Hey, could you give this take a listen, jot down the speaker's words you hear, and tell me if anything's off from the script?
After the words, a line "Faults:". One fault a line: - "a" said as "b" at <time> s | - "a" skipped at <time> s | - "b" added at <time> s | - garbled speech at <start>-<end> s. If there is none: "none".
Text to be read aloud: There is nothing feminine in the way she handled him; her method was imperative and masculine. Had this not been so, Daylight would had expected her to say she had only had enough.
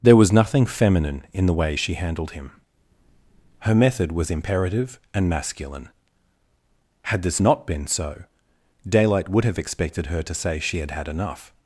There was nothing feminine in the way she handled him; her method was imperative and masculine. Had this not been so, Daylight would have expected her to say she had had enough.
Faults:
- "is" said as "was" at 0.1 s
- "had" said as "have" at 9.4 s
- "only" skipped at 10.9 s